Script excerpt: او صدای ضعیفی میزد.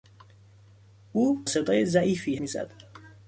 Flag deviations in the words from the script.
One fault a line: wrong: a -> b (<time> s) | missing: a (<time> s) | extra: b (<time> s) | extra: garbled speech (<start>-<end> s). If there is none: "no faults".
no faults